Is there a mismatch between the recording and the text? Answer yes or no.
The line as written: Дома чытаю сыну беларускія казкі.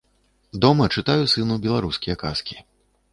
no